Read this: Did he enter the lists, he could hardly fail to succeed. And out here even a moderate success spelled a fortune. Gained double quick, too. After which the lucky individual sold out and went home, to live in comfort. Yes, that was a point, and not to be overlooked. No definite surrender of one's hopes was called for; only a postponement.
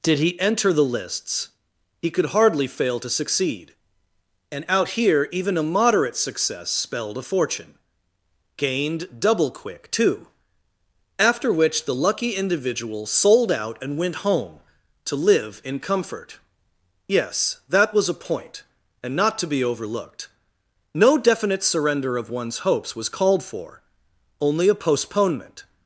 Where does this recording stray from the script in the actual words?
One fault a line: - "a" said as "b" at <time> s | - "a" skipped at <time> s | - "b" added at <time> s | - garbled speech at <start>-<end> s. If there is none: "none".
none